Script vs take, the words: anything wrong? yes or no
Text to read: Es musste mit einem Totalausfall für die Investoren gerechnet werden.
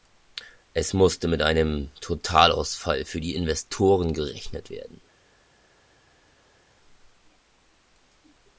no